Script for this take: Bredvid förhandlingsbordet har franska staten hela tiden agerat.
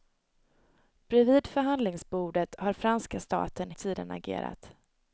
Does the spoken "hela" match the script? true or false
false